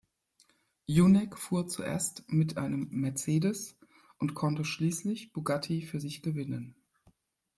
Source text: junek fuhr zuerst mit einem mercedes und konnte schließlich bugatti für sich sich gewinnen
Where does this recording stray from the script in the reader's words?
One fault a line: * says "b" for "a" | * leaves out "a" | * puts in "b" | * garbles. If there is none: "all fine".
* leaves out "sich"